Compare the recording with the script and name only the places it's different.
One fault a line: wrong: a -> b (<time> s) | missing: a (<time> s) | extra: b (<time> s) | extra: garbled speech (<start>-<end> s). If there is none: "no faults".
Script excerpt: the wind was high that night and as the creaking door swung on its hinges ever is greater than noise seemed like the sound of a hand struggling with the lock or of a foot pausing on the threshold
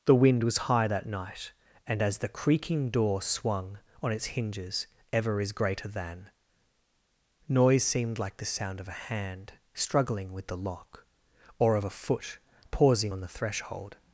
no faults